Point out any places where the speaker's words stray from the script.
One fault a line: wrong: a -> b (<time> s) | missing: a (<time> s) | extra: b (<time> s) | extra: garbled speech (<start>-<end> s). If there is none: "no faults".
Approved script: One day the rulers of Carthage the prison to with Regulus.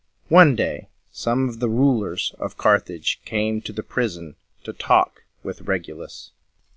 extra: some of (1.1 s)
extra: came to (3.2 s)
extra: talk (4.7 s)